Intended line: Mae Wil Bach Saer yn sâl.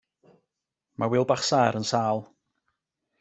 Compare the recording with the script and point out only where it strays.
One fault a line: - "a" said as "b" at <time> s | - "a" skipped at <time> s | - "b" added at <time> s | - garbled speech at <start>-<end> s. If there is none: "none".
none